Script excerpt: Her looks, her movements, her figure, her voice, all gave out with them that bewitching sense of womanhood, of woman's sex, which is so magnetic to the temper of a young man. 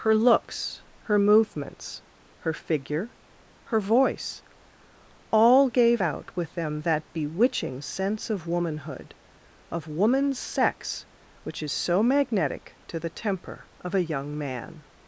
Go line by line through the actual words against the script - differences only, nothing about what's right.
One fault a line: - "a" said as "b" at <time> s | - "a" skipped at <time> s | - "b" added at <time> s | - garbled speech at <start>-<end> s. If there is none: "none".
none